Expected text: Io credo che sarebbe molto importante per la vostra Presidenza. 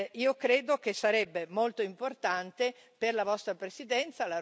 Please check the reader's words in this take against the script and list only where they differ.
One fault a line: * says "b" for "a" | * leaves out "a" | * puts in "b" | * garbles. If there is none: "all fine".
all fine